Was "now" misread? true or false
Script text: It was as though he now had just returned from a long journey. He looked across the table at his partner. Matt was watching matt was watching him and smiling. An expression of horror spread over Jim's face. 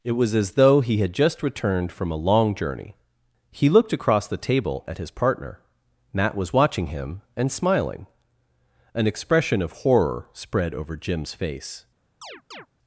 true